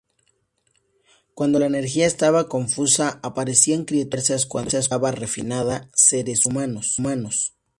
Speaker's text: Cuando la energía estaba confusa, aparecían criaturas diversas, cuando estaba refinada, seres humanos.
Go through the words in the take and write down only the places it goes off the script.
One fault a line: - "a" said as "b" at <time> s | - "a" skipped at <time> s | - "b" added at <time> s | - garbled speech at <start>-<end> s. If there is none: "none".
none